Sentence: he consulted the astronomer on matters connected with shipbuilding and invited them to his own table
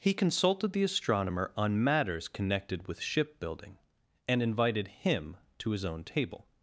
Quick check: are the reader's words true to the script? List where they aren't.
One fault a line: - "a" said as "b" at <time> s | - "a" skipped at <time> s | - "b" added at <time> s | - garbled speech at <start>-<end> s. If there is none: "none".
- "them" said as "him" at 4.9 s